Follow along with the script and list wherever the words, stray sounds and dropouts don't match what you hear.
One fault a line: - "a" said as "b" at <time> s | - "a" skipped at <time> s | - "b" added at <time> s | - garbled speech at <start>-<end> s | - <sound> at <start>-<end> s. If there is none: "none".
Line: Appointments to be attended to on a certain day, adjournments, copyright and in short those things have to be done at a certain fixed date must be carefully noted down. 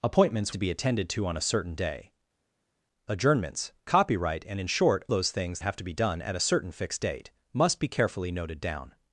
none